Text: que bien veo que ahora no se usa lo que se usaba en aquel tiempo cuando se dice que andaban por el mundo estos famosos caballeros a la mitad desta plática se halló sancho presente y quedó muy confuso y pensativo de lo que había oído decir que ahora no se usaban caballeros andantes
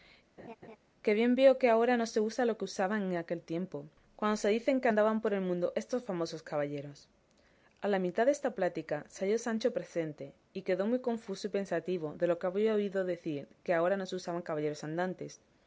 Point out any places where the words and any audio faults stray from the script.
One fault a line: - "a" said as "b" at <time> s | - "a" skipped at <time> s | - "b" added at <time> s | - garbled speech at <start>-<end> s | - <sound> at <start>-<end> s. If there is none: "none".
- laugh at 0.4-0.8 s